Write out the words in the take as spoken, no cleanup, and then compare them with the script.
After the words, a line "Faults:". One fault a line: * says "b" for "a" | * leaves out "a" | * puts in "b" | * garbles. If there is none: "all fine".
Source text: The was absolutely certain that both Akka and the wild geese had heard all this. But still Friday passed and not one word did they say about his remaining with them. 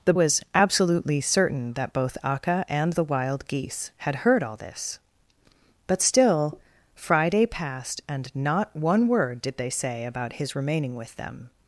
The was absolutely certain that both Akka and the wild geese had heard all this. But still Friday passed and not one word did they say about his remaining with them.
Faults:
all fine